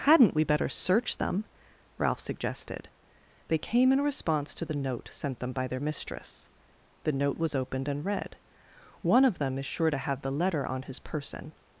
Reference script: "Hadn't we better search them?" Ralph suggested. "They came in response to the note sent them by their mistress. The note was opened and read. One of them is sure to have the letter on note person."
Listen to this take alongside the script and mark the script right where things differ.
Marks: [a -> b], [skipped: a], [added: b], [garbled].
"Hadn't we better search them?" Ralph suggested. "They came in response to the note sent them by their mistress. The note was opened and read. One of them is sure to have the letter on [note -> his] person."